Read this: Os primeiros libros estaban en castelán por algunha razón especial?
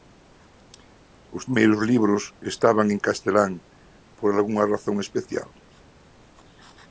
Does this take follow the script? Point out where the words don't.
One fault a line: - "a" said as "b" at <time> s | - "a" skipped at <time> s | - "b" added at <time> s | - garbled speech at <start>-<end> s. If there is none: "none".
none